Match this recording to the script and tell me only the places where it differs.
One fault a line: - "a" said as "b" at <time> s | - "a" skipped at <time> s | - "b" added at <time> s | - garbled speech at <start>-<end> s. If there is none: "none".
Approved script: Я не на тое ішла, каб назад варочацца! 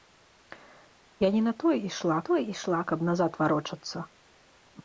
- "тое ішла" added at 2.3 s